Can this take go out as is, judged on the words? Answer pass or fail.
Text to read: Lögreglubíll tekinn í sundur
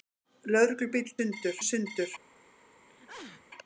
fail